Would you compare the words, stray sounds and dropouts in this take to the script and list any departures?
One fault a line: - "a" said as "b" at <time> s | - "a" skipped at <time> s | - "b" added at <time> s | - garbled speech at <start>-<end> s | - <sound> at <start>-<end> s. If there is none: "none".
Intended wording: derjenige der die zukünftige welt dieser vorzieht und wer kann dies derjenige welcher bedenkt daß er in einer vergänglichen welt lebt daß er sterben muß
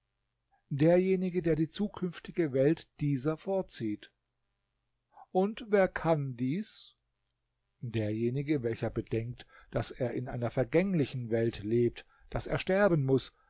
none